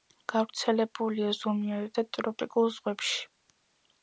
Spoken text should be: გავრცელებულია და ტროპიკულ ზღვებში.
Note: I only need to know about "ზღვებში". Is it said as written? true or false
true